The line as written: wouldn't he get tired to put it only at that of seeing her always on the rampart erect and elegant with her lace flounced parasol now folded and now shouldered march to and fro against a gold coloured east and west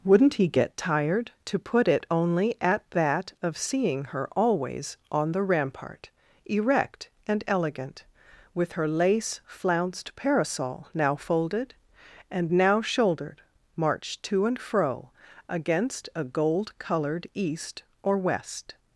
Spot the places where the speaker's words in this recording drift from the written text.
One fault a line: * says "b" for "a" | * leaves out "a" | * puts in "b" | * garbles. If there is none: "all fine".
* says "or" for "and"